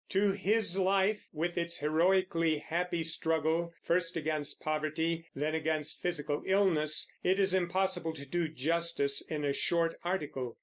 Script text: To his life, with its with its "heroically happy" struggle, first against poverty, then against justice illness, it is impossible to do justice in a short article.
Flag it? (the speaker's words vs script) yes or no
yes